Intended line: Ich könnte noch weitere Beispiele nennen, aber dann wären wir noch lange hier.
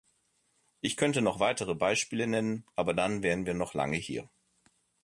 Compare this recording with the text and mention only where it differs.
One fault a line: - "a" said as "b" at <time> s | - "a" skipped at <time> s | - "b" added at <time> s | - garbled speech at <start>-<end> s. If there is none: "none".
none